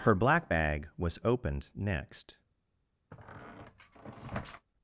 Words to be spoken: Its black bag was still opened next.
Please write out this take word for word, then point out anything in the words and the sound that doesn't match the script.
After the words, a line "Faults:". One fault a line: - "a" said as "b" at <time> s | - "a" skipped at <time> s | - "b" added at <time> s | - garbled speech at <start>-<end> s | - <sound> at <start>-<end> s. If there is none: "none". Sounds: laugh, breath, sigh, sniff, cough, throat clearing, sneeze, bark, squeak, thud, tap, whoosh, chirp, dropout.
Her black bag was opened next.
Faults:
- "Its" said as "Her" at 0.0 s
- "still" skipped at 1.2 s
- squeak at 3.1-4.7 s